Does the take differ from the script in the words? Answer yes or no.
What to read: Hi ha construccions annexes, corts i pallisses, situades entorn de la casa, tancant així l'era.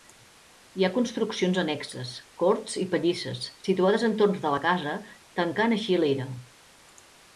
no